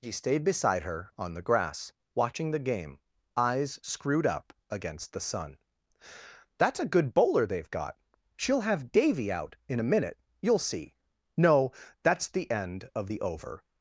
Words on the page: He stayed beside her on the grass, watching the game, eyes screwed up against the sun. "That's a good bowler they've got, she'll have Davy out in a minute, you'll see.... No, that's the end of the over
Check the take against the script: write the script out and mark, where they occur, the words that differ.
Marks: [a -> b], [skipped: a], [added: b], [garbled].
He stayed beside her on the grass, watching the game, eyes screwed up against the sun. "That's a good bowler they've got, she'll have Davy out in a minute, you'll see.... No, that's the end of the over